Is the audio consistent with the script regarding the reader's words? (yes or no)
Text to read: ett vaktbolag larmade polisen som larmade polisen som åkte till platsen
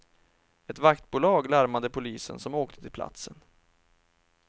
no